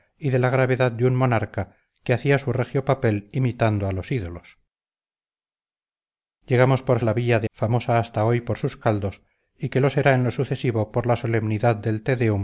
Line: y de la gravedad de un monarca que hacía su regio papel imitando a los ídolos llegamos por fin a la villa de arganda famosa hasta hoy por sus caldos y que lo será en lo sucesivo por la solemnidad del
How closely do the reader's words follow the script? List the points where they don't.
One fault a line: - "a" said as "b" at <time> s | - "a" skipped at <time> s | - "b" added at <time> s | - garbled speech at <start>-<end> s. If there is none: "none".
- "fin" skipped at 7.0 s
- "arganda" skipped at 7.5 s